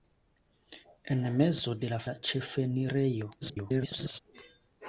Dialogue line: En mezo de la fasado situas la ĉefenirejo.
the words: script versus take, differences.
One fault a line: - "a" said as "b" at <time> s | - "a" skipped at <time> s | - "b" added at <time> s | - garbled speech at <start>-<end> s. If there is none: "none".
- "fasado situas" skipped at 2.0 s
- garbled speech at 3.4-4.2 s